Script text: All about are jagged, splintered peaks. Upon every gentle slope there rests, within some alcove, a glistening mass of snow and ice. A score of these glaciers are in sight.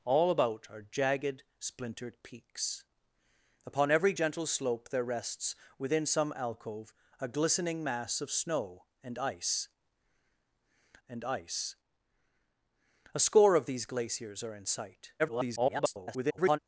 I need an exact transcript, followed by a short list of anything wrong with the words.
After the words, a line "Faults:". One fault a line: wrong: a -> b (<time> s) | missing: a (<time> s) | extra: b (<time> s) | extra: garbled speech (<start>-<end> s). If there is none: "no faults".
All about are jagged, splintered peaks. Upon every gentle slope there rests, within some alcove, a glistening mass of snow and ice and ice. A score of these glaciers are in sight. [garbled]
Faults:
extra: and ice (11.1 s)
extra: garbled speech (15.2-16.6 s)